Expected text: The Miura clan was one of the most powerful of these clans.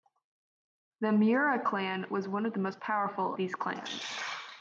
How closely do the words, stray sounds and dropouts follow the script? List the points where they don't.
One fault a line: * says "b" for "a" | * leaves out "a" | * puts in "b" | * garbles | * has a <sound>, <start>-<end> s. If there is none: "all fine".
* leaves out "of"